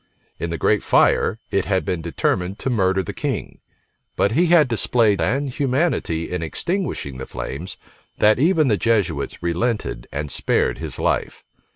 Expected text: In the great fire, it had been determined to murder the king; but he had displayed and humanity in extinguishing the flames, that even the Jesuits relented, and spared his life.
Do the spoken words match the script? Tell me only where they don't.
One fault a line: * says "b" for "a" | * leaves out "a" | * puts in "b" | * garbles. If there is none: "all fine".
all fine